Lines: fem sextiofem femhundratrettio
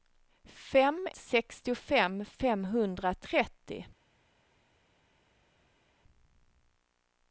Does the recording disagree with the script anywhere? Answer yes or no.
no